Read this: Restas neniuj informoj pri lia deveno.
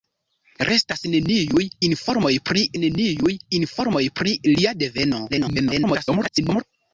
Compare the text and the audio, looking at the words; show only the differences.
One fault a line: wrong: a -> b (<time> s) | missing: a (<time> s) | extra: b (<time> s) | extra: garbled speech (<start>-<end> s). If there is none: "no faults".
extra: neniuj informoj pri (2.8 s)
extra: garbled speech (5.3-6.6 s)